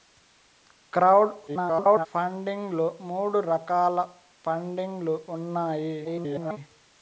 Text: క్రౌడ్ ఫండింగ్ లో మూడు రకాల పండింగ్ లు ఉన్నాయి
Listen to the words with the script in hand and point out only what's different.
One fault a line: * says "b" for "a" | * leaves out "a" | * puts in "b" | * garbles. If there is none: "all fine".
* garbles
* garbles